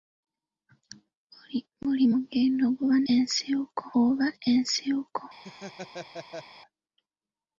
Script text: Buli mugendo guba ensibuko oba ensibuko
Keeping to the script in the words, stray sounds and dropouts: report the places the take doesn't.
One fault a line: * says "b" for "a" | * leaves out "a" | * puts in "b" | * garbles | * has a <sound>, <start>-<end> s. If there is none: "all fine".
* has a laugh, 5.4-6.5 s